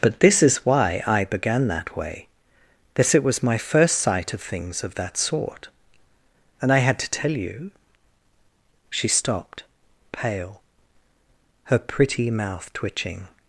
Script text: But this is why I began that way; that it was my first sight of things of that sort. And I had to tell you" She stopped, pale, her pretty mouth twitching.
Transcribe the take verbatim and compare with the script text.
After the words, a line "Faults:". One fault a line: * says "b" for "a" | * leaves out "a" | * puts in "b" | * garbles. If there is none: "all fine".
But this is why I began that way; that it was my first sight of things of that sort. And I had to tell you" She stopped, pale, her pretty mouth twitching.
Faults:
all fine